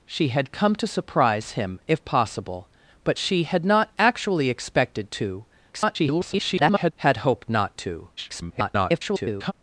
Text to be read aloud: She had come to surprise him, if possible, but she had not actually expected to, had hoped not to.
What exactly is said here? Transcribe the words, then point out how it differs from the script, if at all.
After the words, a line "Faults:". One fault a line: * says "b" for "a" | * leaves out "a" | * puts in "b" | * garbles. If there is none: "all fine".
She had come to surprise him, if possible, but she had not actually expected to, [garbled] had hoped not to. [garbled]
Faults:
* garbles
* garbles